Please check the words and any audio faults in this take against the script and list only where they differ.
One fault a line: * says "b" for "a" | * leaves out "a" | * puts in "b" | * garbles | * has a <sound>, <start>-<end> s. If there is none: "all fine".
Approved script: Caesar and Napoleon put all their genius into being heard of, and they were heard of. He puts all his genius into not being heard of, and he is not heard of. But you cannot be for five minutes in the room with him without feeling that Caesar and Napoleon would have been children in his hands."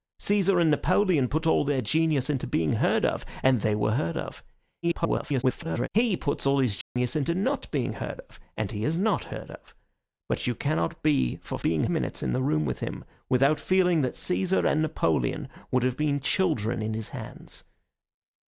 * garbles
* has a dropout, 6.8-7.0 s
* says "being" for "five"